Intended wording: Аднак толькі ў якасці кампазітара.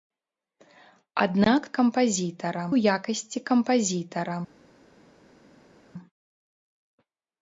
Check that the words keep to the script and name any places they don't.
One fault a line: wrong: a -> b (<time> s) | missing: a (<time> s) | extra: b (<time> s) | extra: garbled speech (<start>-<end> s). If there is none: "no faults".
wrong: толькі -> кампазітара (1.8 s)